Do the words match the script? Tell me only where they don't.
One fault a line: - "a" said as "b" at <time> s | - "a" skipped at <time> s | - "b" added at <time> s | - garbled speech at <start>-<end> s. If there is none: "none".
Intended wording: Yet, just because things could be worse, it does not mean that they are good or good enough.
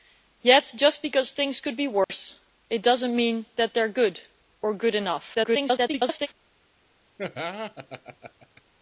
- garbled speech at 5.3-6.3 s